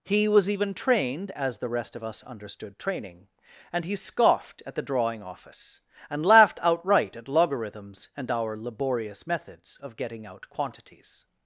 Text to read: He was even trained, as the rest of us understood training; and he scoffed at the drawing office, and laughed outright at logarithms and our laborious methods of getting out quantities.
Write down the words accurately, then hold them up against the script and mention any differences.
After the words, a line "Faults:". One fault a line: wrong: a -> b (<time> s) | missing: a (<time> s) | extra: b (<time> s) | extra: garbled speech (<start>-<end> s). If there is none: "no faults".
He was even trained, as the rest of us understood training; and he scoffed at the drawing office, and laughed outright at logarithms and our laborious methods of getting out quantities.
Faults:
no faults